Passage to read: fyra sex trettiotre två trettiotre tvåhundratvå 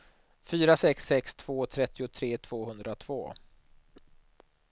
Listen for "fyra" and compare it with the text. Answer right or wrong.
right